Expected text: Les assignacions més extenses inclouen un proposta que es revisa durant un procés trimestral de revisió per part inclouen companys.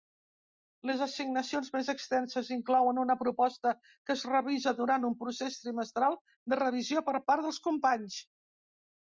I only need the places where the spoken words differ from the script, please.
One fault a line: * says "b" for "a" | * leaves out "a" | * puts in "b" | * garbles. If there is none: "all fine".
* says "una" for "un"
* says "dels" for "inclouen"